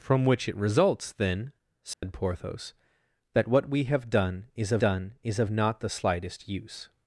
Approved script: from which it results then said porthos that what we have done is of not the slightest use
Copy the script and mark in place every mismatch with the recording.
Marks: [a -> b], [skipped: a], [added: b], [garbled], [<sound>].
from which it results then said [dropout] porthos that what we have done is of [added: done is of] not the slightest use